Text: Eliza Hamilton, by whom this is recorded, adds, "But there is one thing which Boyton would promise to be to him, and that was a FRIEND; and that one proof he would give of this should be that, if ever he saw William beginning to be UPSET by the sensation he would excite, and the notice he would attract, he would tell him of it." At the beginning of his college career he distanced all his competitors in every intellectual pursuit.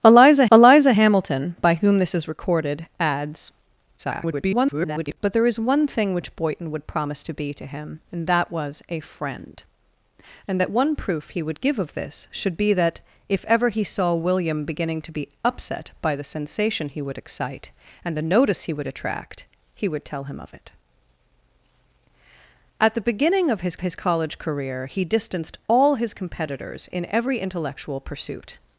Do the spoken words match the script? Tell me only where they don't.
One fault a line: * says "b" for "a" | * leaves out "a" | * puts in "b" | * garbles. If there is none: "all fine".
* puts in "eliza"
* garbles
* puts in "his"